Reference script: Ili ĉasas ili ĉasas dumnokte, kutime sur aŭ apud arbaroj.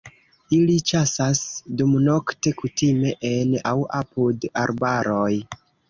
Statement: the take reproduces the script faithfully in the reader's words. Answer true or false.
false